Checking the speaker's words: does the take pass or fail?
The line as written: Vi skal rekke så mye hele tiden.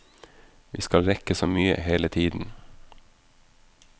pass